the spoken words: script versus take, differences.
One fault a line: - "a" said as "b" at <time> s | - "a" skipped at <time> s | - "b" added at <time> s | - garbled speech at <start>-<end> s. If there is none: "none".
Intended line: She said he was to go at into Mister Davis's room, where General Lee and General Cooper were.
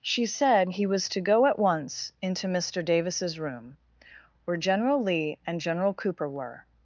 - "once" added at 1.6 s